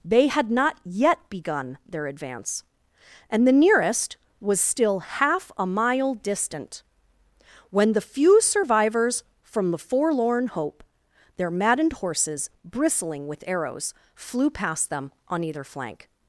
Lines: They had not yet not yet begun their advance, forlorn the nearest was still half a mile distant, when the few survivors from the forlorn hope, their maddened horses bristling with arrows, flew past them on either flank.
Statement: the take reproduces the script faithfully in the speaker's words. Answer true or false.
false